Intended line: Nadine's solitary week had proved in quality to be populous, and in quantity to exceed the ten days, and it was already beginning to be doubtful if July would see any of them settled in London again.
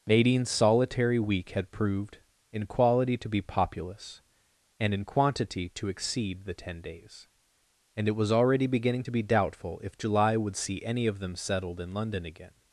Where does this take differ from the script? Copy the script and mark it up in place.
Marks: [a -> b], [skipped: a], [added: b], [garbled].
Nadine's solitary week had proved in quality to be populous, and in quantity to exceed the ten days, and it was already beginning to be doubtful if July would see any of them settled in London again.